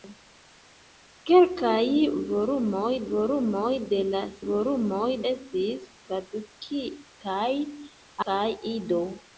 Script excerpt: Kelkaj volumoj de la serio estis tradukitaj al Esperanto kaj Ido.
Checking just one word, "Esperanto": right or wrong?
wrong